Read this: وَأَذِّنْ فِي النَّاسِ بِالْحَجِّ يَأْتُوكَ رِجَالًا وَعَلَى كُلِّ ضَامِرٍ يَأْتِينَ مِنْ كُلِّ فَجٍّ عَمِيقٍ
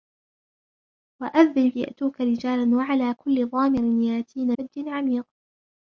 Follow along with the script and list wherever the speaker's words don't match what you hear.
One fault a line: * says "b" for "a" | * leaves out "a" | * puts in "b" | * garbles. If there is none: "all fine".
* leaves out "فِي النَّاسِ بِالْحَجِّ"
* leaves out "مِنْ كُلِّ"